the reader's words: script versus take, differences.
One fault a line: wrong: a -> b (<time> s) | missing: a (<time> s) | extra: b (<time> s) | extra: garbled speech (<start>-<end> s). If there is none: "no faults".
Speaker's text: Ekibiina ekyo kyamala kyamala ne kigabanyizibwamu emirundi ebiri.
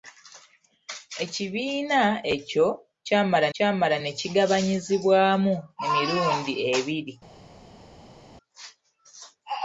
no faults